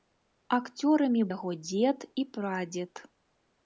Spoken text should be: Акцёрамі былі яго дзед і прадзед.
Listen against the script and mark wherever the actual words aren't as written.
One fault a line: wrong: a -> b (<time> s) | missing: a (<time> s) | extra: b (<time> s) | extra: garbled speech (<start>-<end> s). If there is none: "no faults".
missing: былі (1.2 s)